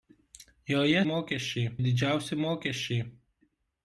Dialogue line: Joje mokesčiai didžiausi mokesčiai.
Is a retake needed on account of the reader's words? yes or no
no